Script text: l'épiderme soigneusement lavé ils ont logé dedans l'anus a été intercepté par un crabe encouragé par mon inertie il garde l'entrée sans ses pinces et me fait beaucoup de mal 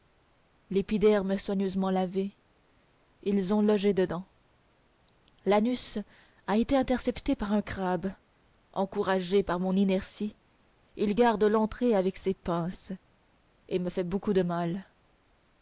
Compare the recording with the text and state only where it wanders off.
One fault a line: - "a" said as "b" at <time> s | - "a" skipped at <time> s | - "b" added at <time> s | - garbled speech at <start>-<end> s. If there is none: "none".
- "sans" said as "avec" at 12.0 s